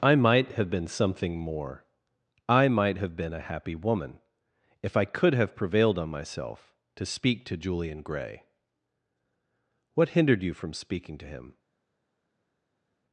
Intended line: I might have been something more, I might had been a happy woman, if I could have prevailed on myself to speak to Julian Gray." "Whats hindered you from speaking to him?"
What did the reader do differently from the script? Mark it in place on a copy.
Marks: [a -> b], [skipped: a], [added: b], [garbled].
I might have been something more, I might [had -> have] been a happy woman, if I could have prevailed on myself to speak to Julian Gray." ["Whats -> What] hindered you from speaking to him?"